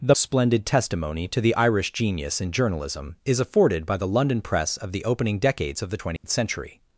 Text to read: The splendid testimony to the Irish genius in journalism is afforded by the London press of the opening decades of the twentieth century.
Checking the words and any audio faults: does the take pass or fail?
fail